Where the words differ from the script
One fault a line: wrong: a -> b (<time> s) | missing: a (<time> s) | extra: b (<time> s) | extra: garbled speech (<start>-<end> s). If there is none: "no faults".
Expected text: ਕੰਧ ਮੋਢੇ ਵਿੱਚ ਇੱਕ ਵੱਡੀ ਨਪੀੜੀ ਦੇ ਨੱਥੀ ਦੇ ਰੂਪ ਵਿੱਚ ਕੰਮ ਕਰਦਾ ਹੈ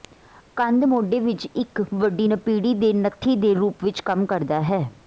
no faults